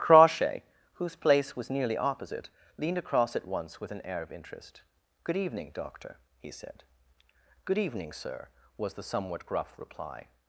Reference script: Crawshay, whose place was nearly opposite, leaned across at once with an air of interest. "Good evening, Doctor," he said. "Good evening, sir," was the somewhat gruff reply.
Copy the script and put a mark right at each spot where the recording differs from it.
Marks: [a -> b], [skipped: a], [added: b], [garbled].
Crawshay, whose place was nearly opposite, leaned across at once with an air of interest. "Good evening, Doctor," he said. "Good evening, sir," was the somewhat gruff reply.